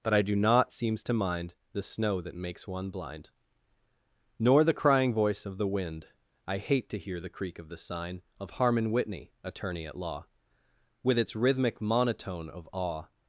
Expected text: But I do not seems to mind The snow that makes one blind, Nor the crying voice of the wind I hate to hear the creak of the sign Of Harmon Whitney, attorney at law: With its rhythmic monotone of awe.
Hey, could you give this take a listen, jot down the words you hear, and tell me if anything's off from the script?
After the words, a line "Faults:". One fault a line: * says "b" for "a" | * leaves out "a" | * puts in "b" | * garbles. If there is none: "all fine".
But I do not seems to mind The snow that makes one blind, Nor the crying voice of the wind I hate to hear the creak of the sign Of Harmon Whitney, attorney at law: With its rhythmic monotone of awe.
Faults:
all fine